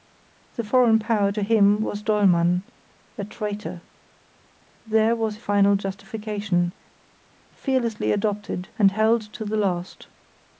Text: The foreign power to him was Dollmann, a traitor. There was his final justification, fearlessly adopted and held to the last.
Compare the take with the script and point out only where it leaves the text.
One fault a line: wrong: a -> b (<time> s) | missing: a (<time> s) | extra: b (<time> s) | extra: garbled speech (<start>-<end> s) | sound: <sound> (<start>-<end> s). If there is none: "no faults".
missing: his (5.4 s)